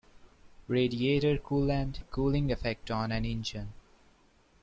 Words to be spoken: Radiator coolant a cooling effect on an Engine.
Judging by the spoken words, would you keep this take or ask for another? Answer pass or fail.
pass